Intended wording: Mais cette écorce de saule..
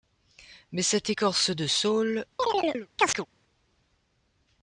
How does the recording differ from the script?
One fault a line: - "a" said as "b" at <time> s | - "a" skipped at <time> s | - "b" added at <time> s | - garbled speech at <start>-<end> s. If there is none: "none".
none